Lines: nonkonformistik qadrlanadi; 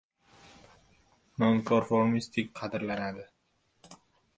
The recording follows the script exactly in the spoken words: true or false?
true